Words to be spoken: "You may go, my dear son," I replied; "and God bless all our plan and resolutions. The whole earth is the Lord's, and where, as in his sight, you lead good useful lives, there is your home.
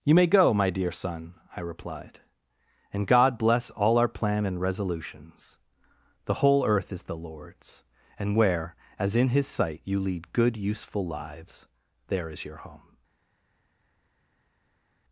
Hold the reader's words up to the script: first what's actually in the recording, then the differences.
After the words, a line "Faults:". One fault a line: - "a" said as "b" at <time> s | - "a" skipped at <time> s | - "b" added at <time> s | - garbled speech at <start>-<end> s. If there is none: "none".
"You may go, my dear son," I replied; "and God bless all our plan and resolutions. The whole earth is the Lord's, and where, as in his sight, you lead good useful lives, there is your home.
Faults:
none